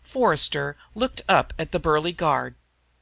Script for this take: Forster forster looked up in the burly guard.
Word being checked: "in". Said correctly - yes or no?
no